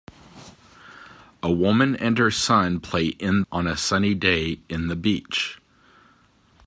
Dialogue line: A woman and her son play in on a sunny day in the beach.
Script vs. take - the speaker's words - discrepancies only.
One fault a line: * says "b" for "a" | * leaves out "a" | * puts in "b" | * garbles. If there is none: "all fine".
all fine